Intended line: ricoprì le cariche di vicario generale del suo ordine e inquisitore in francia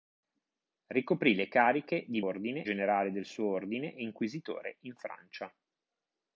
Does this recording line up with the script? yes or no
no